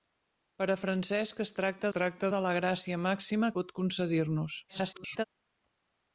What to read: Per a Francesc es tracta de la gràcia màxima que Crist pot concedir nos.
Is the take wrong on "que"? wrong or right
wrong